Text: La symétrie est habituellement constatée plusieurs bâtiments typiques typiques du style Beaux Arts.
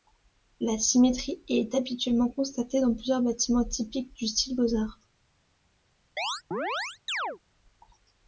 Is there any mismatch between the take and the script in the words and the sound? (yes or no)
yes